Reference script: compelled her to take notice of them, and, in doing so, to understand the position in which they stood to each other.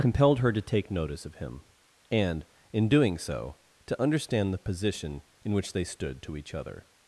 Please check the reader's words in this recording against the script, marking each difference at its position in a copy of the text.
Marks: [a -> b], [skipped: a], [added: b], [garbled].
compelled her to take notice of [them, -> him] and, in doing so, to understand the position in which they stood to each other.